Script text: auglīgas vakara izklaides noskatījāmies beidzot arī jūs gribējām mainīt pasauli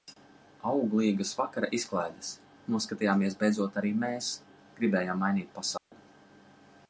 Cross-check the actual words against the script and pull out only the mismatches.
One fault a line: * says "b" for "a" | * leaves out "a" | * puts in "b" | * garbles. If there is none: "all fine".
* says "mēs" for "jūs"